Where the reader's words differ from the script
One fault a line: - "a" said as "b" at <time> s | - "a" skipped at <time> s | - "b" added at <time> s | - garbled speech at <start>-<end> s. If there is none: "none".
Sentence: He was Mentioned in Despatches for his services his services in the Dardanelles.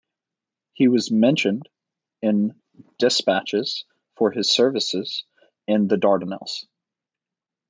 - "his services" skipped at 5.3 s